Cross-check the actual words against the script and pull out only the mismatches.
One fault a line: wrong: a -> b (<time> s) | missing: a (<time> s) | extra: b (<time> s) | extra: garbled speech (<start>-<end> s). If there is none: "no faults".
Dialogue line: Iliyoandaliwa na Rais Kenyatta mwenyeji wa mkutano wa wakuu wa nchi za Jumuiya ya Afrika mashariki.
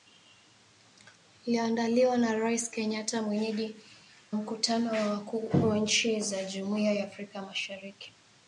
missing: wa (3.8 s)